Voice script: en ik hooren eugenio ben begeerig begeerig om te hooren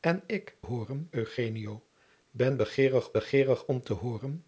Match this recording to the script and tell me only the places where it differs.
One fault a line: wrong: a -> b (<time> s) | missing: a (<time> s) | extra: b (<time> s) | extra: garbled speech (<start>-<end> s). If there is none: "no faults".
no faults